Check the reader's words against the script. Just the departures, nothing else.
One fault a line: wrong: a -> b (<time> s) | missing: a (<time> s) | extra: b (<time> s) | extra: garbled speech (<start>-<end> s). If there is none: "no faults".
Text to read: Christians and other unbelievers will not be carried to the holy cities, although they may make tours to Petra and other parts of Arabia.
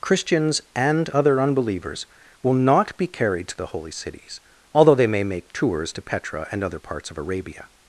no faults